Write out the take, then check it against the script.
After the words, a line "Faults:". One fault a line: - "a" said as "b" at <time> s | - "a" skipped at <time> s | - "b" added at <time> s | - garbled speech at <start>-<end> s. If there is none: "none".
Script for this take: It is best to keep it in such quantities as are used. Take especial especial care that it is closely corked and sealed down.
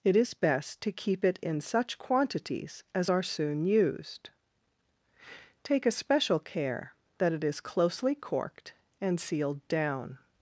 It is best to keep it in such quantities as are soon used. Take especial care that it is closely corked and sealed down.
Faults:
- "soon" added at 3.2 s
- "especial" skipped at 6.4 s